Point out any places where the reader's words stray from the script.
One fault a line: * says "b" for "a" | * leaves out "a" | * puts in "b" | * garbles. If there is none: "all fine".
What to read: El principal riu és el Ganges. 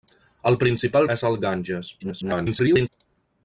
* leaves out "riu"
* garbles